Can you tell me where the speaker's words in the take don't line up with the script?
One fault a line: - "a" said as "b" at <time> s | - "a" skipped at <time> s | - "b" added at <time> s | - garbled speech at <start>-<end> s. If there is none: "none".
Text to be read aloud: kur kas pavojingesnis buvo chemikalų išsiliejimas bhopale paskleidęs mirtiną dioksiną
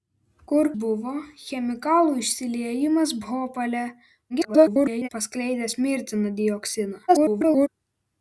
- "kas pavojingesnis" skipped at 0.7 s
- garbled speech at 4.3-5.1 s
- garbled speech at 7.1-7.7 s